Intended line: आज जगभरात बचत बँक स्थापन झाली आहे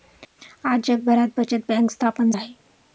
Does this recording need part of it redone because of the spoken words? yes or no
yes